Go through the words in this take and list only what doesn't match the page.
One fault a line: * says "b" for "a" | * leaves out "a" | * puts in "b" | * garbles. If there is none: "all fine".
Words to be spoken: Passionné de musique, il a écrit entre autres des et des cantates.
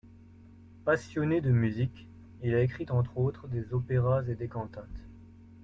* puts in "opéras"